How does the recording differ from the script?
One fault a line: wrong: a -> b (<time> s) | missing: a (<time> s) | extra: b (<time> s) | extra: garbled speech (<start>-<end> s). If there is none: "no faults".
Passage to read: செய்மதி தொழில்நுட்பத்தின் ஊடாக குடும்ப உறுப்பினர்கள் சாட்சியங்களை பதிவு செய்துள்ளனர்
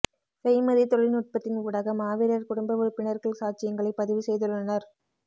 extra: மாவீரர் (2.0 s)